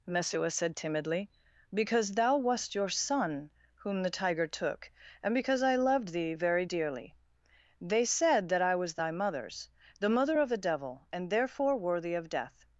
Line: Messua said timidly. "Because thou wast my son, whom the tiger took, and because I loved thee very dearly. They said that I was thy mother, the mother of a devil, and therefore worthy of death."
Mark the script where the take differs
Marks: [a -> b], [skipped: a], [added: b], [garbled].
Messua said timidly. "Because thou wast [my -> your] son, whom the tiger took, and because I loved thee very dearly. They said that I was thy [mother, -> mothers] the mother of a devil, and therefore worthy of death."